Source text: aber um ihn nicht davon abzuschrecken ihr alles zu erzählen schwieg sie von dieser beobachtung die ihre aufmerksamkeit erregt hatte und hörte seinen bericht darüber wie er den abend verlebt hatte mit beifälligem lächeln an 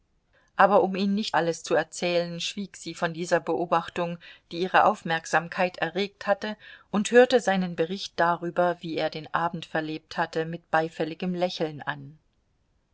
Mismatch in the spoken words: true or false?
true